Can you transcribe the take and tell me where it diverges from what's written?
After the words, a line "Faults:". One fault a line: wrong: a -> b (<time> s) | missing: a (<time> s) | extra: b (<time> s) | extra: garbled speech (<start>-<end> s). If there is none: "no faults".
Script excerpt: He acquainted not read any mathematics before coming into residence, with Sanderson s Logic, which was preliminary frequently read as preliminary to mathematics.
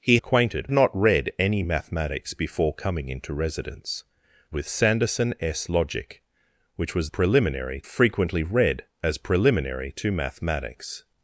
He acquainted not read any mathematics before coming into residence, with Sanderson s Logic, which was preliminary frequently read as preliminary to mathematics.
Faults:
no faults